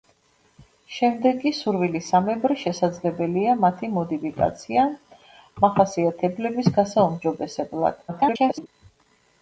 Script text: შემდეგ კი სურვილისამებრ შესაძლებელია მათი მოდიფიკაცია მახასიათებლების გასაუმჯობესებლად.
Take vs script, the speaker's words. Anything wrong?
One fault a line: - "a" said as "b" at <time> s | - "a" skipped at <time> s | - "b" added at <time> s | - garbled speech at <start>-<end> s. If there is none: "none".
- garbled speech at 8.1-8.7 s